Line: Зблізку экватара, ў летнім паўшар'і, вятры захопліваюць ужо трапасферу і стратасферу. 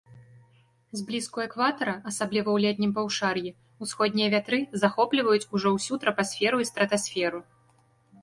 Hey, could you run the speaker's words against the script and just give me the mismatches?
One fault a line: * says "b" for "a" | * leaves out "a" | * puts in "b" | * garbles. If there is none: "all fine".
* puts in "асабліва"
* puts in "усходнія"
* puts in "ўсю"